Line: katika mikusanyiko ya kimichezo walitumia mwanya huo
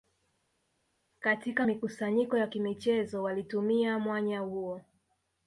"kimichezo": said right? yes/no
yes